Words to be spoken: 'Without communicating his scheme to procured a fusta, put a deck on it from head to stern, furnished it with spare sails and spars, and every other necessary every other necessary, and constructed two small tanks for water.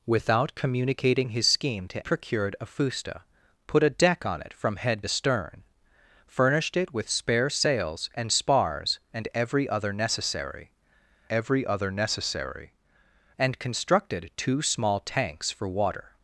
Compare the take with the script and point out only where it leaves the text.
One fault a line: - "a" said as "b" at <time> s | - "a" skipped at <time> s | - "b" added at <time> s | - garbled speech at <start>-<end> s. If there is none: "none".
none